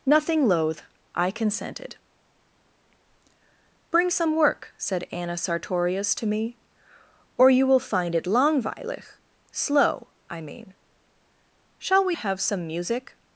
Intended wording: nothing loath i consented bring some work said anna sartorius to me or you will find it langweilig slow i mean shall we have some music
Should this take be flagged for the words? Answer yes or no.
no